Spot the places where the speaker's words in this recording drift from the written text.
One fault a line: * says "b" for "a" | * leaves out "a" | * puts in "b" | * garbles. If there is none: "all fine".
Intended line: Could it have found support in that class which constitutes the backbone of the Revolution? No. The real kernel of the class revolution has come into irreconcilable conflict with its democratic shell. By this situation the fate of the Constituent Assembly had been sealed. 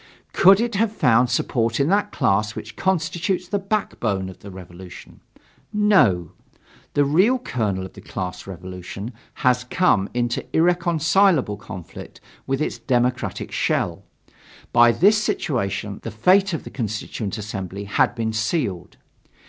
all fine